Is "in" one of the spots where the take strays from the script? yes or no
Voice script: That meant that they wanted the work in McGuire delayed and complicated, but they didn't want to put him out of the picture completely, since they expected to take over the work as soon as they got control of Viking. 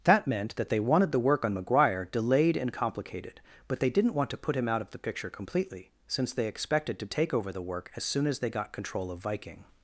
yes